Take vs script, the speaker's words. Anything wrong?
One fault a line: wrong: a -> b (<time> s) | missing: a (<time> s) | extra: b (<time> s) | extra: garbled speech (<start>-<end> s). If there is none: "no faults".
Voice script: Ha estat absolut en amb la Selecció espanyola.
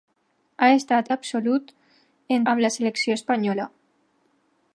no faults